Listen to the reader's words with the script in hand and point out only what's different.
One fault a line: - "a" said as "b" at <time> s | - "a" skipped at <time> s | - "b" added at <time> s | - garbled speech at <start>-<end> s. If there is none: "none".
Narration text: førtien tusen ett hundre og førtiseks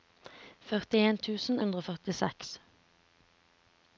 - "ett" skipped at 1.6 s